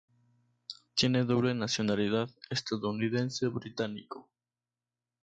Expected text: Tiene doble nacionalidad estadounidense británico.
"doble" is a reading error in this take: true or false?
false